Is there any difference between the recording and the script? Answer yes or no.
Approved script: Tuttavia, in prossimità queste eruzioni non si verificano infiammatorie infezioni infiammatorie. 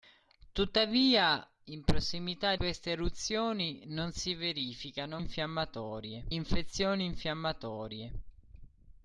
no